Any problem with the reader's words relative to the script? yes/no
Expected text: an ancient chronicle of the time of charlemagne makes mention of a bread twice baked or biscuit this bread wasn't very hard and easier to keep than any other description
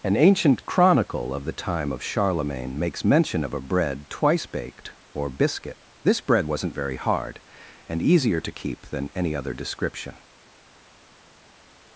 no